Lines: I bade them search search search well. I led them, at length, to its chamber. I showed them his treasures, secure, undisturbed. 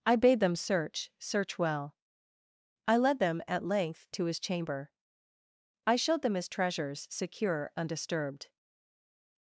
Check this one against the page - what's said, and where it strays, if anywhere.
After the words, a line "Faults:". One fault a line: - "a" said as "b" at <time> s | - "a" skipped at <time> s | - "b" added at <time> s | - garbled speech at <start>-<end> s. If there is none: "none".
I bade them search search well. I led them, at length, to his chamber. I showed them his treasures, secure, undisturbed.
Faults:
- "search" skipped at 1.6 s
- "its" said as "his" at 4.2 s